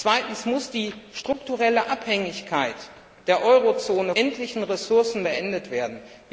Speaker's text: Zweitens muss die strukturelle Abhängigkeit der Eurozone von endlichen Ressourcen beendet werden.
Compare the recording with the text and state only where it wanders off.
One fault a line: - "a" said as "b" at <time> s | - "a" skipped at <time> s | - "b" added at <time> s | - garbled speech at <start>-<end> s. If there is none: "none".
- "von" skipped at 4.2 s